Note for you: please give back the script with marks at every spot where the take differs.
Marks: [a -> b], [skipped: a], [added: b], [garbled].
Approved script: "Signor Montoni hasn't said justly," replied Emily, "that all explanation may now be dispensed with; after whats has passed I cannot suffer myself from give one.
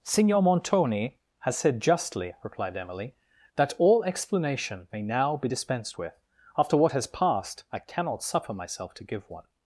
"Signor Montoni [hasn't -> has] said justly," replied Emily, "that all explanation may now be dispensed with; after [whats -> what] has passed I cannot suffer myself [from -> to] give one.